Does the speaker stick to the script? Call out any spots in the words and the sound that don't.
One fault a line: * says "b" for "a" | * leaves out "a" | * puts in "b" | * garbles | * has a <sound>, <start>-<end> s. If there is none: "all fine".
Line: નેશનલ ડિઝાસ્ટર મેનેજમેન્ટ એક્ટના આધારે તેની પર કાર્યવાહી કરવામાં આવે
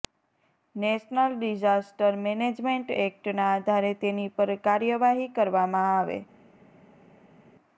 all fine